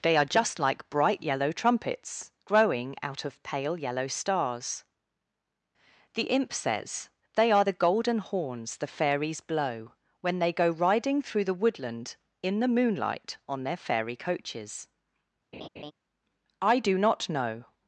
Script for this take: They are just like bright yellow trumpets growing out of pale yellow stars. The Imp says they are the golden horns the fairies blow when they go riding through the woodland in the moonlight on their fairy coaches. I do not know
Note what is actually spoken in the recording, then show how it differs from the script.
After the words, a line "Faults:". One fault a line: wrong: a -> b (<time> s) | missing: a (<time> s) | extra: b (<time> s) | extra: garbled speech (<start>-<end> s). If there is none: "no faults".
They are just like bright yellow trumpets growing out of pale yellow stars. The Imp says they are the golden horns the fairies blow when they go riding through the woodland in the moonlight on their fairy coaches. I do not know
Faults:
no faults